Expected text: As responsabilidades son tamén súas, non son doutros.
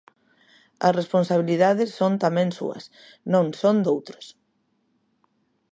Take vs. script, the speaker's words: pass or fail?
pass